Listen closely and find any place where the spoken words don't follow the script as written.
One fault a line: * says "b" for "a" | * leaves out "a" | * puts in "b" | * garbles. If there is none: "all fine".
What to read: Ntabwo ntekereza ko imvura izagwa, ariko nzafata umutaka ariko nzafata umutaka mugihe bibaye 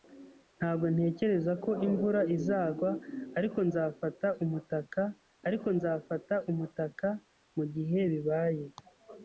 all fine